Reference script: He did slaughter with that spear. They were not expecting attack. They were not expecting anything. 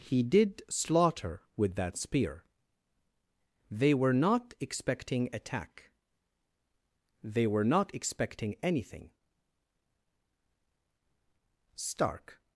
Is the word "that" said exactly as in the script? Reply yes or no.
yes